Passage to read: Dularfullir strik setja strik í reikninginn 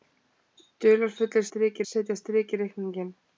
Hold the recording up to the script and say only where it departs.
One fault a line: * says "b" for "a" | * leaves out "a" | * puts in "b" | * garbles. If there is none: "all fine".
all fine